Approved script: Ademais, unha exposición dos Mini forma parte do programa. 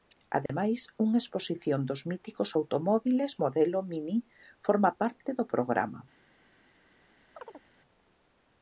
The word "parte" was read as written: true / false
true